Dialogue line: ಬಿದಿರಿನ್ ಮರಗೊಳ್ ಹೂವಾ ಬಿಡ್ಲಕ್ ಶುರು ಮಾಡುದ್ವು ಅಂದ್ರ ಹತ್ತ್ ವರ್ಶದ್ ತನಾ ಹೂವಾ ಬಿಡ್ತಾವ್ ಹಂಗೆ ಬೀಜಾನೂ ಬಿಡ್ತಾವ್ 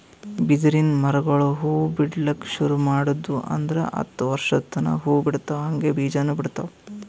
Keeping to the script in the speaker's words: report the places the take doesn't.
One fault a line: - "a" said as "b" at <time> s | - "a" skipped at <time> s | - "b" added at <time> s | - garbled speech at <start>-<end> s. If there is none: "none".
none